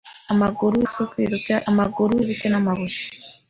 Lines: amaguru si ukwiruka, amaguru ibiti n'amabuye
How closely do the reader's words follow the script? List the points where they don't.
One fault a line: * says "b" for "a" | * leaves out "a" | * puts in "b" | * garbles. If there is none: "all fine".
all fine